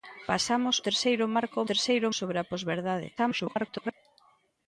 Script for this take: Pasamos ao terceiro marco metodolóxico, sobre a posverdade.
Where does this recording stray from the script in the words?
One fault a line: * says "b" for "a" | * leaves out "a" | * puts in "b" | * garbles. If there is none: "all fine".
* leaves out "ao"
* says "terceiro" for "metodolóxico"
* garbles